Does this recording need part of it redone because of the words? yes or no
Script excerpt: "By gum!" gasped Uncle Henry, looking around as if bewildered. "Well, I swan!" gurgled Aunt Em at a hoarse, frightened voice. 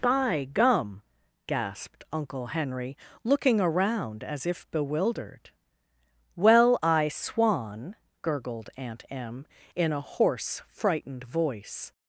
yes